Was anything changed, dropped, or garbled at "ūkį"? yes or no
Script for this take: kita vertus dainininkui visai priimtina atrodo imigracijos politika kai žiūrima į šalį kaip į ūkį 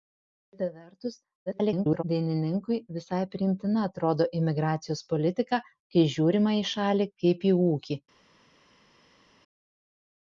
no